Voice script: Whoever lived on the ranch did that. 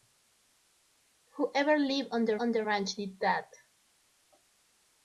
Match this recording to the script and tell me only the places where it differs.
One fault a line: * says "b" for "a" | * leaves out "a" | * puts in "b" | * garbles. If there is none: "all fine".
* puts in "on the"